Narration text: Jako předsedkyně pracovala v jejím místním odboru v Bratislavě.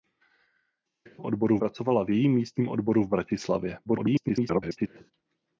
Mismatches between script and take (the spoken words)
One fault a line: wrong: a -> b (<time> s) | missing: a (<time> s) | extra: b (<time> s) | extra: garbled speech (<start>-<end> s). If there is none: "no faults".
wrong: předsedkyně -> odboru (1.2 s)
extra: garbled speech (3.8-5.1 s)